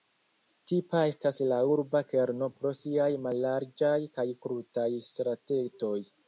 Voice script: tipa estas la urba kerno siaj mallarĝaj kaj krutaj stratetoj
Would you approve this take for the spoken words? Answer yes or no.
no